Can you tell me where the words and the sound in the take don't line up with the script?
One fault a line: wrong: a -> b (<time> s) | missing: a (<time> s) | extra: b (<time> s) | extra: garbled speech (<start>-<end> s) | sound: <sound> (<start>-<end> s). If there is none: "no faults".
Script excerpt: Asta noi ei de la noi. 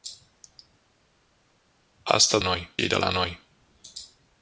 no faults